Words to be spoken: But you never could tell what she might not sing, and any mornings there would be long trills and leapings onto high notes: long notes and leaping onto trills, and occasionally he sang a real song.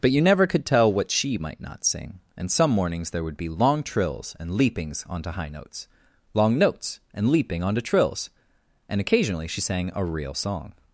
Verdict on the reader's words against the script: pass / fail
fail